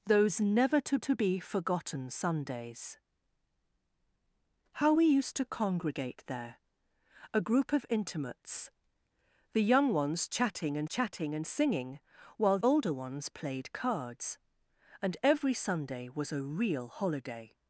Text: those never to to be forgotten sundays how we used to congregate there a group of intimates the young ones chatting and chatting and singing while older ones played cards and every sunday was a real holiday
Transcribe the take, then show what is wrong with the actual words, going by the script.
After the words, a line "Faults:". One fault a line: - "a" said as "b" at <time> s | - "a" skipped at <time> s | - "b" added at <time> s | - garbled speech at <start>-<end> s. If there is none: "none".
those never to to be forgotten sundays how we used to congregate there a group of intimates the young ones chatting and chatting and singing while older ones played cards and every sunday was a real holiday
Faults:
none